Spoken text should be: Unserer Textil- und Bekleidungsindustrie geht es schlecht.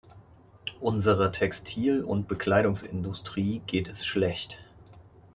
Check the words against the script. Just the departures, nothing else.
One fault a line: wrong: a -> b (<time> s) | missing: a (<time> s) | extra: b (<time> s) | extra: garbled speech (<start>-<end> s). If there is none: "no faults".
no faults